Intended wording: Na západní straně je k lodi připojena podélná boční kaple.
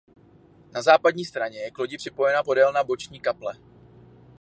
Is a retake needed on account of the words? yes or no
no